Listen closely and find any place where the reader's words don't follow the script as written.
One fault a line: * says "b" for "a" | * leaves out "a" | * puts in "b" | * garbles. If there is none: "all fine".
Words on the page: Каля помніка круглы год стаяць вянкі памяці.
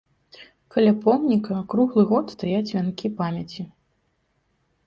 all fine